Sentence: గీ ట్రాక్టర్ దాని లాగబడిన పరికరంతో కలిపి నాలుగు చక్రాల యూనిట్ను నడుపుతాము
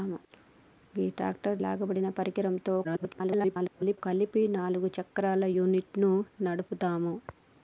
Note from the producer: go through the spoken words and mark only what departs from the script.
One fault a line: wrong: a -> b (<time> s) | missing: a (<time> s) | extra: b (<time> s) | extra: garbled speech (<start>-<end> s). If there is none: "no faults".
missing: దాని (1.6 s)
extra: garbled speech (2.8-4.0 s)